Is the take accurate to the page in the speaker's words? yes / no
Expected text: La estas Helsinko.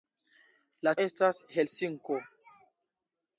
yes